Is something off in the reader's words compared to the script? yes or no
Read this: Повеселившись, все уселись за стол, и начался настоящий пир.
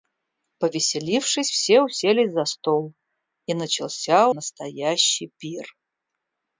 no